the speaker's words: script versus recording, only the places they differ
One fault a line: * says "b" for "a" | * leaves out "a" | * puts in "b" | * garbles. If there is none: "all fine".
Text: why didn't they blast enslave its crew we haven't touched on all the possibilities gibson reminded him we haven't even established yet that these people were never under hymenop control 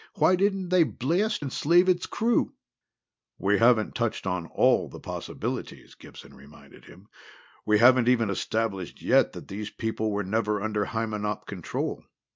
all fine